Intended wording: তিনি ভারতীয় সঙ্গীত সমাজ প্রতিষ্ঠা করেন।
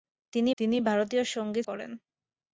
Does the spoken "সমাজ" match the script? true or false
false